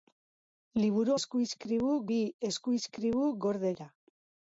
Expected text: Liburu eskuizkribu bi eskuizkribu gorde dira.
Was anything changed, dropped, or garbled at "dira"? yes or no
no